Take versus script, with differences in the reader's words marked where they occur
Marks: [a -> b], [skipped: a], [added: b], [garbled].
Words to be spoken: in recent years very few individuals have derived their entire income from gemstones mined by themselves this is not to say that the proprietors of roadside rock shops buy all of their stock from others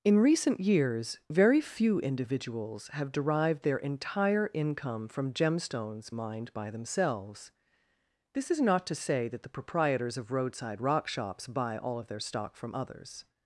in recent years very few individuals have derived their entire income from gemstones mined by themselves this is not to say that the proprietors of roadside rock shops buy all of their stock from others